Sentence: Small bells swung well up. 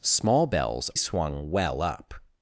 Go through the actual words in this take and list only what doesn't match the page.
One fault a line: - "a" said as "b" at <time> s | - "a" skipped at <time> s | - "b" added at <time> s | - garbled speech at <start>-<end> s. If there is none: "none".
none